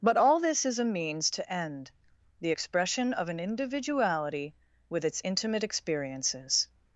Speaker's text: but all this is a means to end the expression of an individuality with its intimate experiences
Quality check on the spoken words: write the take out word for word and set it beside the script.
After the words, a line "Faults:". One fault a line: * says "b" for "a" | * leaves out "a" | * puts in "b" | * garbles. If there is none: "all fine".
but all this is a means to end the expression of an individuality with its intimate experiences
Faults:
all fine